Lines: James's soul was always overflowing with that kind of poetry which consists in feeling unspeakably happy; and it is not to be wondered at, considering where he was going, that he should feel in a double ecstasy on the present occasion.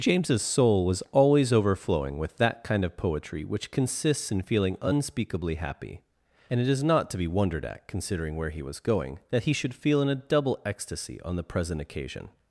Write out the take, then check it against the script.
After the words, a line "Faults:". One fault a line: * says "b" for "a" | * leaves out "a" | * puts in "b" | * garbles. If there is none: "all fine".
James's soul was always overflowing with that kind of poetry which consists in feeling unspeakably happy; and it is not to be wondered at, considering where he was going, that he should feel in a double ecstasy on the present occasion.
Faults:
all fine